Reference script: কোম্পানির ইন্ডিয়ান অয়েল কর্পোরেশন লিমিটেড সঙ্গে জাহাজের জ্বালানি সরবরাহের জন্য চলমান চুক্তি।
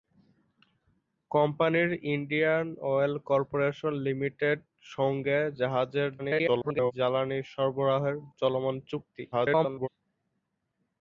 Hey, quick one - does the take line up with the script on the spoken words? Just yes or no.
no